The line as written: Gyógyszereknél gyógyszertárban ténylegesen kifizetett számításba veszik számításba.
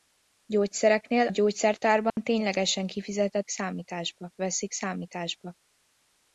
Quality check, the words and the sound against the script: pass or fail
fail